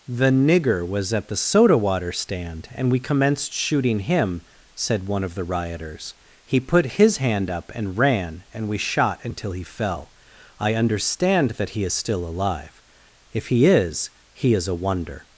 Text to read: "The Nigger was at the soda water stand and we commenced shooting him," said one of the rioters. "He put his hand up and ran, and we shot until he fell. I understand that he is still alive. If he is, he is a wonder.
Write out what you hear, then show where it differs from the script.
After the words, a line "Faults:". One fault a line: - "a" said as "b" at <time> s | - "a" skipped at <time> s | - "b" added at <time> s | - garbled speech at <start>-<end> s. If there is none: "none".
"The Nigger was at the soda water stand and we commenced shooting him," said one of the rioters. "He put his hand up and ran, and we shot until he fell. I understand that he is still alive. If he is, he is a wonder.
Faults:
none